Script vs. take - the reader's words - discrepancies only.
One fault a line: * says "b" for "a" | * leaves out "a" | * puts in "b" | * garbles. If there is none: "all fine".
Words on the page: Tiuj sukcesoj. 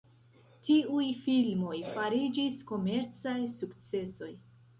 * puts in "filmoj fariĝis komercaj"